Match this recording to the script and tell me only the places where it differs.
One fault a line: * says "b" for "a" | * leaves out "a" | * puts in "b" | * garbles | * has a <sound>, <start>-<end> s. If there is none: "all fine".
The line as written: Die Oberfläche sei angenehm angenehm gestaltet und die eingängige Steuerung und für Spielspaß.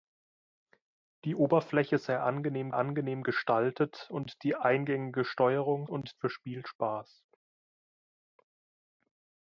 all fine